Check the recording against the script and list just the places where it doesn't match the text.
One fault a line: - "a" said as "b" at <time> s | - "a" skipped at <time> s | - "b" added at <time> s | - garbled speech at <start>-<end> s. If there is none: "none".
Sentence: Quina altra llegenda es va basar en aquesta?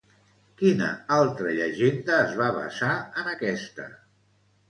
none